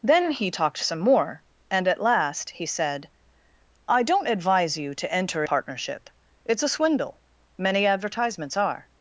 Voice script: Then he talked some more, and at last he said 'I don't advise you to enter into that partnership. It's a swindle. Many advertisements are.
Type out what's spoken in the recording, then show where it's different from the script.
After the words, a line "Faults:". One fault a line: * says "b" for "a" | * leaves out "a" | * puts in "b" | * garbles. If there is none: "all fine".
Then he talked some more, and at last he said 'I don't advise you to enter partnership. It's a swindle. Many advertisements are.
Faults:
* leaves out "into that"